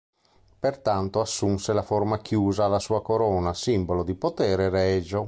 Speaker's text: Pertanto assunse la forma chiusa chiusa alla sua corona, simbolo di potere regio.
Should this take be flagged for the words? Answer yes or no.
yes